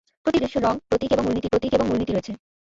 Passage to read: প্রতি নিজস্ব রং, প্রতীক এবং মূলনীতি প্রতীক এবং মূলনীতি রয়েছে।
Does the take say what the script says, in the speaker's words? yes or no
yes